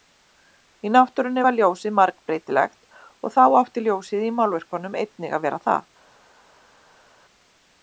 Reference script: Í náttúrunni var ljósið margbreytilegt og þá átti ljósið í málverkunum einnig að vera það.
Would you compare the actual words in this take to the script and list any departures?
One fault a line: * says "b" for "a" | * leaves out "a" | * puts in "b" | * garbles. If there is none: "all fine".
all fine